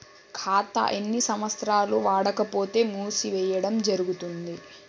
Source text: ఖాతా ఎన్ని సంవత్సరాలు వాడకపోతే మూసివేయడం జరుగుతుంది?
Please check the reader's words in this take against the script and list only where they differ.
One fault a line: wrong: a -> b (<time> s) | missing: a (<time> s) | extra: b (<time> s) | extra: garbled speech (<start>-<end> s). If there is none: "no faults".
no faults